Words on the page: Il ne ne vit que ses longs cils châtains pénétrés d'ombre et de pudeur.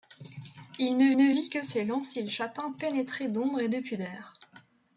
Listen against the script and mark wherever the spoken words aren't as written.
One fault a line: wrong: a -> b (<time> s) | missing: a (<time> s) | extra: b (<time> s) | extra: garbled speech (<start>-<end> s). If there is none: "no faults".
no faults